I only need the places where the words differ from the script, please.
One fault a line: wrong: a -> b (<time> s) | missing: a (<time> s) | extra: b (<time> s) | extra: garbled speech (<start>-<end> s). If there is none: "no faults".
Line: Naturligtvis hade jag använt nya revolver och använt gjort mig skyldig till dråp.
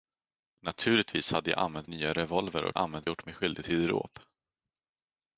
no faults